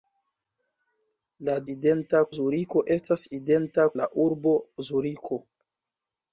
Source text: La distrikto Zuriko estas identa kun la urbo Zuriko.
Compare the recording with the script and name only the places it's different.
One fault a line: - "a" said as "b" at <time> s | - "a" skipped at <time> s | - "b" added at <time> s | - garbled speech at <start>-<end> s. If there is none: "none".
- "distrikto" said as "identa" at 1.7 s
- "kun" skipped at 3.9 s